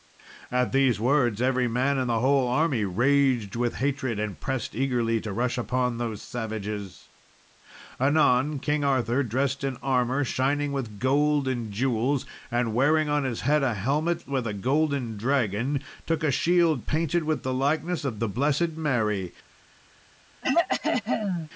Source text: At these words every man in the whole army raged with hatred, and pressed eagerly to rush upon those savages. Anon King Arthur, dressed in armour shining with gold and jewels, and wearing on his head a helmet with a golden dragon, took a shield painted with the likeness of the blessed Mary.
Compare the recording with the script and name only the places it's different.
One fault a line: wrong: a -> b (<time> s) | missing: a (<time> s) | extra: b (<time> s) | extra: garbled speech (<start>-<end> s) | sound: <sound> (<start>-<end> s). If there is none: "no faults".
sound: throat clearing (20.4-21.5 s)